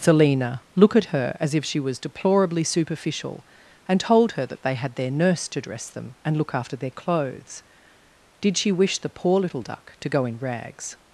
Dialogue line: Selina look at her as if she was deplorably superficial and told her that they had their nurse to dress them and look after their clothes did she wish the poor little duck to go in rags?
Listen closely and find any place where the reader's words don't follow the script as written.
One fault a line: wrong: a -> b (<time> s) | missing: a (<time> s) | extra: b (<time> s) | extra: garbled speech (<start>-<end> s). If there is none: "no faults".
no faults